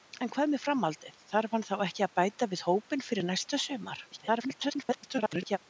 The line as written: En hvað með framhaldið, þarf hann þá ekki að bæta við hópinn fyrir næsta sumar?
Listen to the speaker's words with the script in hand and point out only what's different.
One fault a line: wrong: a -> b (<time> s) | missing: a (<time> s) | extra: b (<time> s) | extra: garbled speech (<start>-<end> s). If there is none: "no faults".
extra: garbled speech (4.1-5.6 s)